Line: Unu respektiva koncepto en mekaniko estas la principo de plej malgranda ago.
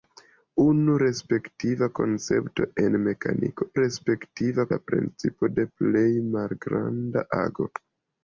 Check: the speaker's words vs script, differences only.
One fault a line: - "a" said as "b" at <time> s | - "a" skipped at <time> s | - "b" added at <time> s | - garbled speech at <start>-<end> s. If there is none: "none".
- "estas" said as "respektiva" at 3.8 s